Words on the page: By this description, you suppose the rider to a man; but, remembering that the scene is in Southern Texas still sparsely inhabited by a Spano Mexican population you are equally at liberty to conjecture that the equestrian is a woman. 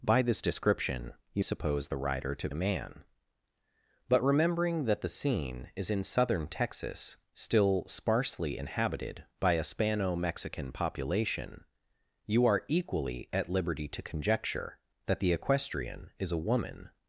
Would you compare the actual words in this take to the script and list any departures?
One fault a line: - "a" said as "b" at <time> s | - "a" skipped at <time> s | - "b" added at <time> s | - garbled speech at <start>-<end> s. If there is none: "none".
none